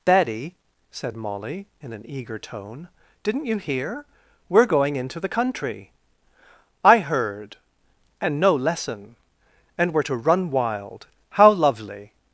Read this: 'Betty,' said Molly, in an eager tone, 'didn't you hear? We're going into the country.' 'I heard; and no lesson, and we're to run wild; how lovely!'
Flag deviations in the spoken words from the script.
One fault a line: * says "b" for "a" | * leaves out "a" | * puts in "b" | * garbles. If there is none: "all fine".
all fine